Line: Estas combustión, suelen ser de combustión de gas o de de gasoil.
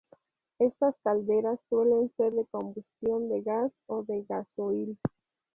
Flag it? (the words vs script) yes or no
yes